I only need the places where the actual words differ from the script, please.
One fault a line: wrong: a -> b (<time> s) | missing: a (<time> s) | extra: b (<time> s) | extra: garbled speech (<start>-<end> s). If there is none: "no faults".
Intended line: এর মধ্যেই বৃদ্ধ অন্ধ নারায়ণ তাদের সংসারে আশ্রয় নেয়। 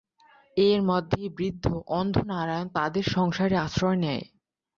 no faults